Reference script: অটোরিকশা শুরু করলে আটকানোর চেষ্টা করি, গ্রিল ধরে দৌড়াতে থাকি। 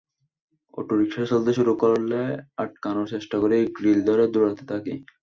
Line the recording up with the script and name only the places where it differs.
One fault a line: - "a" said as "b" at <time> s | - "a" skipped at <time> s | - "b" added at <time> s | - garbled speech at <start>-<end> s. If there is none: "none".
- "চলতে" added at 1.3 s